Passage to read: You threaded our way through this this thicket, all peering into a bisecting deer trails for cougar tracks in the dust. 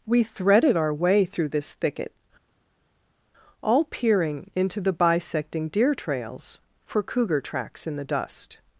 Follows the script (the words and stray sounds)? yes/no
no